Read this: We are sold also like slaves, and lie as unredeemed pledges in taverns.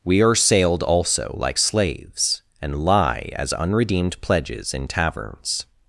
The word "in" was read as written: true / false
true